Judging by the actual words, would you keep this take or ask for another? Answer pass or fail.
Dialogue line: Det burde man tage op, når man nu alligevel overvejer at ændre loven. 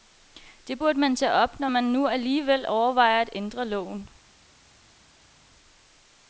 pass